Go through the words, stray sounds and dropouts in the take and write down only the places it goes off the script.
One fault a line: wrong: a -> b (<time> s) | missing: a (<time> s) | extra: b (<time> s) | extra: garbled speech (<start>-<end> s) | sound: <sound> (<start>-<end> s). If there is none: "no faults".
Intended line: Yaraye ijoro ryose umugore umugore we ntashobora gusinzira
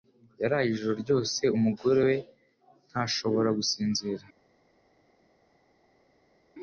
missing: umugore (2.0 s)